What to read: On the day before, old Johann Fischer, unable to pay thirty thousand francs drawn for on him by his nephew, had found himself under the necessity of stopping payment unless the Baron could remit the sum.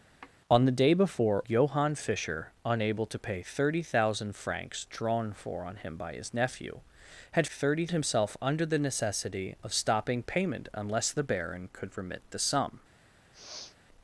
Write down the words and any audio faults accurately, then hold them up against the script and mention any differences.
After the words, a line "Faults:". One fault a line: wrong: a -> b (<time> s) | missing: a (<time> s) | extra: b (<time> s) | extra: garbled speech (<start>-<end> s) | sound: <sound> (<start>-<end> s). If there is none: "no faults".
On the day before, Johann Fischer, unable to pay thirty thousand francs drawn for on him by his nephew, had thirty himself under the necessity of stopping payment unless the Baron could remit the sum.
Faults:
sound: sigh (0.2-0.3 s)
missing: old (1.4 s)
wrong: found -> thirty (7.5 s)
sound: sniff (13.3-13.8 s)